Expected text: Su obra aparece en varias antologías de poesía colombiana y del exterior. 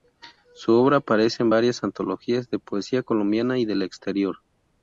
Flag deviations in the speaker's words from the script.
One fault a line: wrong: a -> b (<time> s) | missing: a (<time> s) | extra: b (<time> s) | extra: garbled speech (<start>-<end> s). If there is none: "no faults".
no faults